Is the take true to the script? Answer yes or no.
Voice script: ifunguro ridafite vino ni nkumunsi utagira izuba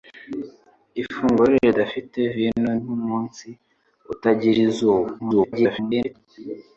no